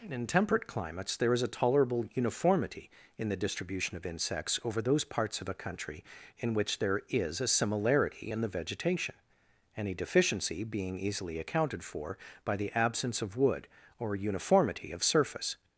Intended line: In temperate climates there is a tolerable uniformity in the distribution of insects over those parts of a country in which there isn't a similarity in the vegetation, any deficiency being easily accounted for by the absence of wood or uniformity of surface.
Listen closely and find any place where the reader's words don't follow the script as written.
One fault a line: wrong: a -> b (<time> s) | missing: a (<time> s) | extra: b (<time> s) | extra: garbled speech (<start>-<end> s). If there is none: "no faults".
wrong: isn't -> is (7.1 s)